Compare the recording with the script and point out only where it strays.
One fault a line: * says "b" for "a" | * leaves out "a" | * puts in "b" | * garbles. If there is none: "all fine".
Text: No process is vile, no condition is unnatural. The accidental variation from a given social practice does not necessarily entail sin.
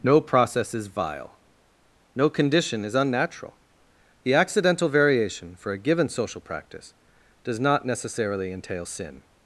* says "for" for "from"